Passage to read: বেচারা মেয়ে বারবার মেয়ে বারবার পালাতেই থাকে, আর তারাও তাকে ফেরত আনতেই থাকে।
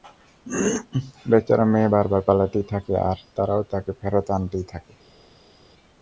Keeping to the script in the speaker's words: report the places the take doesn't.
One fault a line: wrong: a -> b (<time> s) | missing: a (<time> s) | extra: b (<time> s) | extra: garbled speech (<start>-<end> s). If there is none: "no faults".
missing: মেয়ে বারবার (2.2 s)